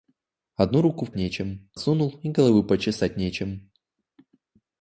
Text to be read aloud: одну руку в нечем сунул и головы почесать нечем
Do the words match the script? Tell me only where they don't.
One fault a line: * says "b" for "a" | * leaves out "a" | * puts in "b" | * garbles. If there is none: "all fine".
all fine